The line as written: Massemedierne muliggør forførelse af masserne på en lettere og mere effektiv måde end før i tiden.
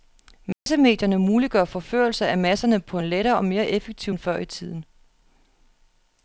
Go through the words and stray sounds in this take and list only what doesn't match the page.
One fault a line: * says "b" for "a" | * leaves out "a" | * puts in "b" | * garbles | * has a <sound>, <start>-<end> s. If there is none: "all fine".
* has a dropout, 0.5-0.7 s
* leaves out "måde"